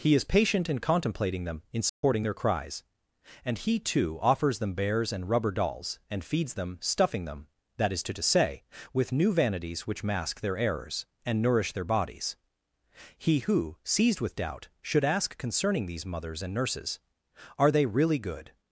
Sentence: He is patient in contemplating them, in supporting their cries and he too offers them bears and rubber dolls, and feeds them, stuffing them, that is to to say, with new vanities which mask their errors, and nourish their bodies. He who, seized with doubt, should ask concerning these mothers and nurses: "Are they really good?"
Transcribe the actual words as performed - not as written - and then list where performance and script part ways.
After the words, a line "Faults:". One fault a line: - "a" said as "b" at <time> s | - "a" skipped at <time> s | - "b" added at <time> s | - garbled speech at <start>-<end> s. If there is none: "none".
He is patient in contemplating them, in supporting their cries and he too offers them bears and rubber dolls, and feeds them, stuffing them, that is to to say, with new vanities which mask their errors, and nourish their bodies. He who, seized with doubt, should ask concerning these mothers and nurses: "Are they really good?"
Faults:
none